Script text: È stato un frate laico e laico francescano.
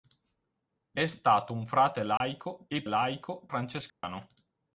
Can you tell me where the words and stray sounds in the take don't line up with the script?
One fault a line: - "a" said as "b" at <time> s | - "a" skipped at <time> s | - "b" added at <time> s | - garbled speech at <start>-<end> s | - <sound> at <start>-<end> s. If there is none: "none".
- dropout at 2.2-2.2 s
- dropout at 3.9-4.0 s